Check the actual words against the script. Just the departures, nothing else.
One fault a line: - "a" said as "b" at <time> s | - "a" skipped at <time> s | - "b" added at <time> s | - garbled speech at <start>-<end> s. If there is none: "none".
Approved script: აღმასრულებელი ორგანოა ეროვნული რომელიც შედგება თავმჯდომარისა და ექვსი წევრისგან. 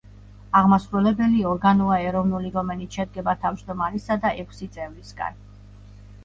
none